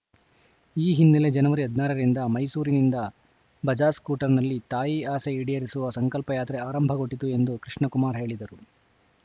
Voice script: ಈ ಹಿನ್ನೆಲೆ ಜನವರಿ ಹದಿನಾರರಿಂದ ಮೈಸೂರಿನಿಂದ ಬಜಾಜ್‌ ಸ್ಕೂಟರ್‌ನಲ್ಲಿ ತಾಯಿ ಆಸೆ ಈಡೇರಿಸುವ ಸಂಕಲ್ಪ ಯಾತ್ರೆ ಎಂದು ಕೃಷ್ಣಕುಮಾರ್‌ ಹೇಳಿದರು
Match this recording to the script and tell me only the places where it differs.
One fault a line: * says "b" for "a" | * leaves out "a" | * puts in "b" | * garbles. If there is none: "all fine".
* puts in "ಆರಂಭಗೊಂಡಿತು"